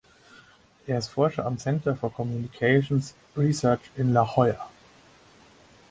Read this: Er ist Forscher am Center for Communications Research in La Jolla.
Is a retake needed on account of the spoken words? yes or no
no